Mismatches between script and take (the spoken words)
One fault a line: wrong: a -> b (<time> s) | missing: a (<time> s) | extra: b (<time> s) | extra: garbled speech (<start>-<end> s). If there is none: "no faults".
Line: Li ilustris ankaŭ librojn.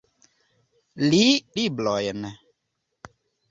missing: ilustris ankaŭ (1.2 s)